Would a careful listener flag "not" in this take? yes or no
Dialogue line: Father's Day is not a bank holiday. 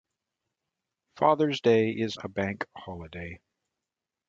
yes